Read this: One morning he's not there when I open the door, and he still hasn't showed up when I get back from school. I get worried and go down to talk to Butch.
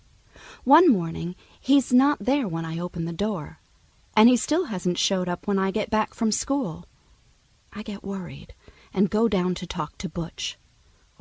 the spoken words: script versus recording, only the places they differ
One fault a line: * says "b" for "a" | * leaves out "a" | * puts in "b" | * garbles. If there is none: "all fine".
all fine